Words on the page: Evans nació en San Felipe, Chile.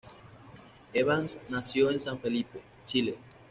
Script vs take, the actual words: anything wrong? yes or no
no